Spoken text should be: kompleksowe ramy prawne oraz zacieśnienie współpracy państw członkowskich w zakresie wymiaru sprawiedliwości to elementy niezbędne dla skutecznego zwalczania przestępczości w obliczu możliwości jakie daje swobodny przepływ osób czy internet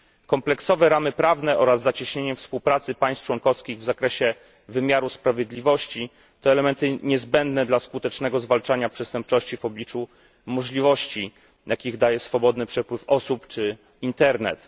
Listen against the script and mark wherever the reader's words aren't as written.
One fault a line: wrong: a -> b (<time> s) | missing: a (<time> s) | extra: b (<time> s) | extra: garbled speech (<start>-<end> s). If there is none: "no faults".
no faults